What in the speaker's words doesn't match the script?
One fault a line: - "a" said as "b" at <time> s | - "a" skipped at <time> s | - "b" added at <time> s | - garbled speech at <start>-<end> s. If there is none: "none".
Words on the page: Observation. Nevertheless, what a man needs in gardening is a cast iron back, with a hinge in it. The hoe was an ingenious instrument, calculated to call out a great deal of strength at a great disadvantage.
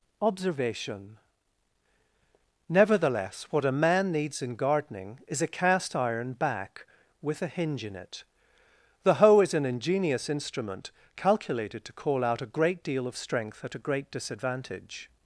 - "was" said as "is" at 9.4 s